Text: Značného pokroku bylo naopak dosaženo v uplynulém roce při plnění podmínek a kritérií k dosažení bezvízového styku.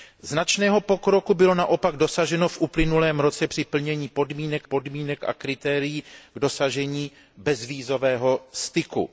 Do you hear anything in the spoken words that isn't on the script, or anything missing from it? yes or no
yes